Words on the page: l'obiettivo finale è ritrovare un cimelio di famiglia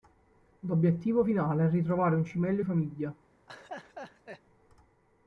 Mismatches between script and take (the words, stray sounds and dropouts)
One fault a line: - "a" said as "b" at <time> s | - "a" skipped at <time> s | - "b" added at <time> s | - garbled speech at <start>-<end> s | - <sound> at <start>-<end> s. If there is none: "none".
- "di" skipped at 2.6 s
- laugh at 3.5-4.4 s